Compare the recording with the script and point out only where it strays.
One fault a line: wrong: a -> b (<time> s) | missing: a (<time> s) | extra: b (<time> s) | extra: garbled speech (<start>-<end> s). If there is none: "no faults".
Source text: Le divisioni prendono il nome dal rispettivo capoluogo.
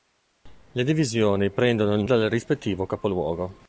missing: nome (2.0 s)